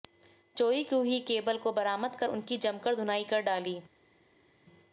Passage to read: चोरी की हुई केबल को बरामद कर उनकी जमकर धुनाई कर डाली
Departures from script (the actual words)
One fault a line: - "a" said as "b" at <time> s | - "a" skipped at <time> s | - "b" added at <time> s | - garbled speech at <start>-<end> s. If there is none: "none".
none